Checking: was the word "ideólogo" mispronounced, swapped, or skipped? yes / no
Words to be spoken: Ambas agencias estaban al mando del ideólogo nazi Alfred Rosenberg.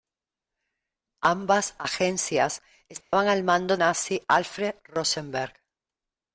yes